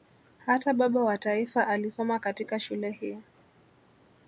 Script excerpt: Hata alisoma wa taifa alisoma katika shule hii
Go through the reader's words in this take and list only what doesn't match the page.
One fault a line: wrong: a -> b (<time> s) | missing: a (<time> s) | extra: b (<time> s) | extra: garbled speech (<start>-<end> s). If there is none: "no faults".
wrong: alisoma -> baba (0.7 s)